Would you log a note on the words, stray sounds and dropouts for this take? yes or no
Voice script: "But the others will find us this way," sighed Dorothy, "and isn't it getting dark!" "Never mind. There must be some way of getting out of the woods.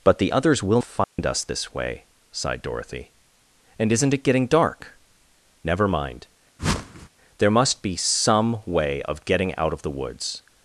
yes